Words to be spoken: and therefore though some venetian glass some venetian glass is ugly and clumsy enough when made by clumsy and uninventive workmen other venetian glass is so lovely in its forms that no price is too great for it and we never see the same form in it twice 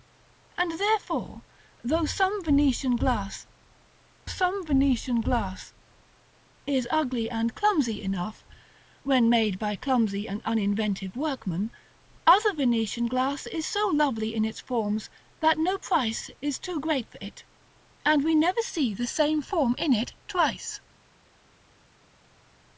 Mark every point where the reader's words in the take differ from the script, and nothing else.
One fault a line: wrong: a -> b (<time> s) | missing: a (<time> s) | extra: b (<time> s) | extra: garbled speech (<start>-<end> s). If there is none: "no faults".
no faults